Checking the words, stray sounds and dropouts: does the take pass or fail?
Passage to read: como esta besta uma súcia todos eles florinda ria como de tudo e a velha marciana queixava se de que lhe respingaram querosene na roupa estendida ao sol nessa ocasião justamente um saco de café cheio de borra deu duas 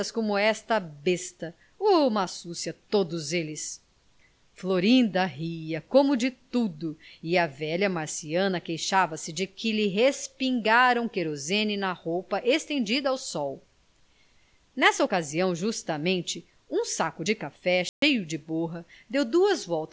fail